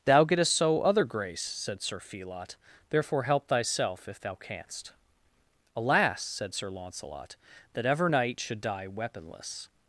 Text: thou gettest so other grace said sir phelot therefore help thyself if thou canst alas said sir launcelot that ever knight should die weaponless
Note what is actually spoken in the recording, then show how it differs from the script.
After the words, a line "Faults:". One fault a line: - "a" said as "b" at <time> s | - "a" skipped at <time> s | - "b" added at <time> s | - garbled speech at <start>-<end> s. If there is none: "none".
thou gettest so other grace said sir phelot therefore help thyself if thou canst alas said sir launcelot that ever knight should die weaponless
Faults:
none